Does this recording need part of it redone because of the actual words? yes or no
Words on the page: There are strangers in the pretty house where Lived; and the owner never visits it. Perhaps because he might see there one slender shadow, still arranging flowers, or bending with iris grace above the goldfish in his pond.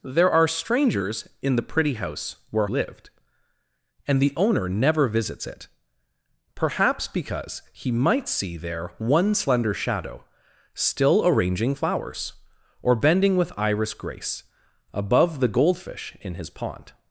no